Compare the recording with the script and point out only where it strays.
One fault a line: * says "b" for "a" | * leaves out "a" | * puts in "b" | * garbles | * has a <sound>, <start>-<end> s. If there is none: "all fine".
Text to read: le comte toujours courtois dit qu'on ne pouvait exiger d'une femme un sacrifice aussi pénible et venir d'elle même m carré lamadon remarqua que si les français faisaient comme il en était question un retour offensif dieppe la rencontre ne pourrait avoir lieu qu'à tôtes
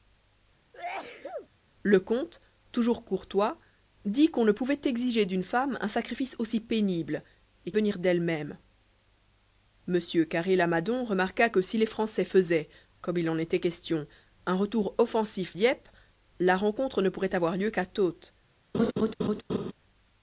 * has a sneeze, 0.7-1.5 s
* has a laugh, 18.7-19.7 s